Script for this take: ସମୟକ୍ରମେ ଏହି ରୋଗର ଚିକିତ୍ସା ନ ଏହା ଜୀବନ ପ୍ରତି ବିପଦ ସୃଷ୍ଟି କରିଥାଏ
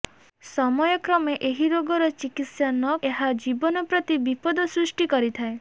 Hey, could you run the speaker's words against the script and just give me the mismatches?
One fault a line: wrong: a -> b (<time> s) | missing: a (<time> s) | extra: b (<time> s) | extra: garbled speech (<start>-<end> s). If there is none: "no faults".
no faults